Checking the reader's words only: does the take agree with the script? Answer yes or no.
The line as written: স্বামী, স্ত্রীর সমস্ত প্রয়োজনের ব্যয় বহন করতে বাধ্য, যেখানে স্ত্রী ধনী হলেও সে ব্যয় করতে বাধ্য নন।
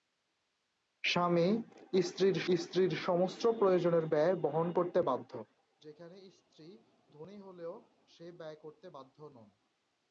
no